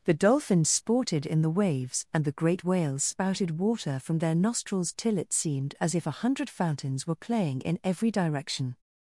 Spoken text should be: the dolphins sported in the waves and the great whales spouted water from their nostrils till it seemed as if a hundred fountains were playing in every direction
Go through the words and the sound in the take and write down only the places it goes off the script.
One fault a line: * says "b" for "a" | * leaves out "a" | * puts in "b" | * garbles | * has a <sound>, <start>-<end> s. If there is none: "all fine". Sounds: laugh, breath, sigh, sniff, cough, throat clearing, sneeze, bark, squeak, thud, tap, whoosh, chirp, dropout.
all fine